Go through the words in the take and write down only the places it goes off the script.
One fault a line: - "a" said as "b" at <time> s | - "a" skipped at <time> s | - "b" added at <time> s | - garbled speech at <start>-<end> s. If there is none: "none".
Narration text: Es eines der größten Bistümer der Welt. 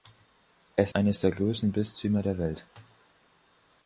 none